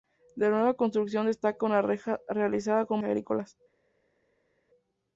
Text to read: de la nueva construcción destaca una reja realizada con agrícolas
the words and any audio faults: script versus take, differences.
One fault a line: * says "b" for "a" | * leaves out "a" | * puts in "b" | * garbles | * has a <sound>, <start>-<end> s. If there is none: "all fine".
all fine